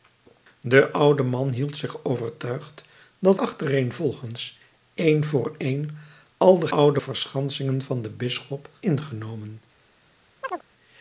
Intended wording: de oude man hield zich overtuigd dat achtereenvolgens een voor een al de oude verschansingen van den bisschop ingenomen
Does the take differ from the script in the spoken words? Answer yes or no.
no